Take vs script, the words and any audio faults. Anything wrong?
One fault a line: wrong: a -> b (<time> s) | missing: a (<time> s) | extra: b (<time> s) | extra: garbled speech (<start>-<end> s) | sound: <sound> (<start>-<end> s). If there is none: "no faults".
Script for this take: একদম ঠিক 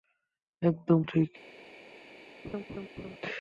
sound: laugh (2.4-3.2 s)